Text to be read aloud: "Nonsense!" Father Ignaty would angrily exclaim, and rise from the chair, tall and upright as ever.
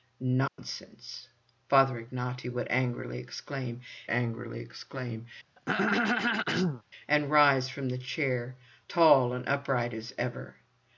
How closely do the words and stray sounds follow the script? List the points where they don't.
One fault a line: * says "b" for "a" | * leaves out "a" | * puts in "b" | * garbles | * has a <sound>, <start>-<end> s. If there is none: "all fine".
* has a dropout, 0.5-0.6 s
* puts in "angrily exclaim"
* has a throat clearing, 5.6-6.8 s